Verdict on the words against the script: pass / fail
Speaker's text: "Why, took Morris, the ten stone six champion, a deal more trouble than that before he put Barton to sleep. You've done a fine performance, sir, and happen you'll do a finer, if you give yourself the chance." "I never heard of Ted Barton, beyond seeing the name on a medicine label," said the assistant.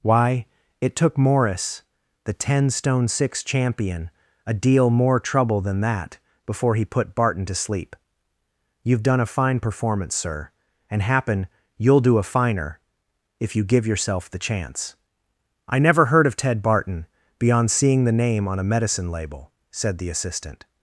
fail